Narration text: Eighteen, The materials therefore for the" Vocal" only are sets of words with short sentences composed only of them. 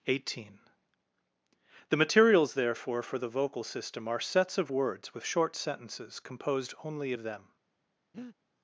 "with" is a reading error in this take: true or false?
false